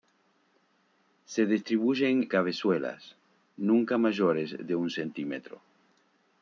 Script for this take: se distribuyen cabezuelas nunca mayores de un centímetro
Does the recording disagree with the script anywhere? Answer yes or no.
no